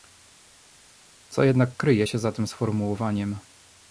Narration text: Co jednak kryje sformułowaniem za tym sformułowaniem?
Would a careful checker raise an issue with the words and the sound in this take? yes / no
yes